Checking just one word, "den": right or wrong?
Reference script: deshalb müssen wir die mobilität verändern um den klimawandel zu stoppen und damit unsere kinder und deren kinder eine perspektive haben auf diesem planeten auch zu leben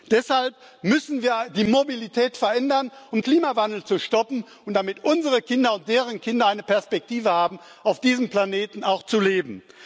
wrong